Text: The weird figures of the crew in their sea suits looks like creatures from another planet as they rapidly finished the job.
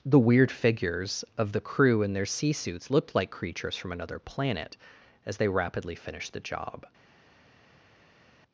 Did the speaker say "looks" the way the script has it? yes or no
no